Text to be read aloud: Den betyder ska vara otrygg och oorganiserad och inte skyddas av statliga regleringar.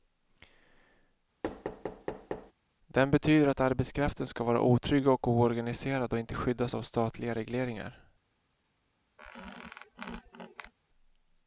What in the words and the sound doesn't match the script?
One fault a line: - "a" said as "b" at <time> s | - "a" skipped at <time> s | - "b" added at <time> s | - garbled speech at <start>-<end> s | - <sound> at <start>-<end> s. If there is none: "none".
- thud at 1.4-2.5 s
- "att arbetskraften" added at 3.5 s
- squeak at 9.2-10.7 s